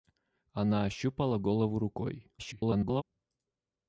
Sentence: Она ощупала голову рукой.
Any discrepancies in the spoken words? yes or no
yes